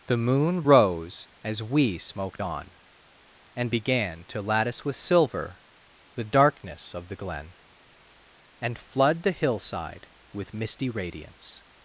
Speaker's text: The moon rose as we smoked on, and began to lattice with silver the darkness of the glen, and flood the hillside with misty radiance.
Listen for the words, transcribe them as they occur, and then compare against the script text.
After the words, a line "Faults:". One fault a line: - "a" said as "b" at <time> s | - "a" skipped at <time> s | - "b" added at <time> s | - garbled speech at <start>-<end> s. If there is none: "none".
The moon rose as we smoked on, and began to lattice with silver the darkness of the glen, and flood the hillside with misty radiance.
Faults:
none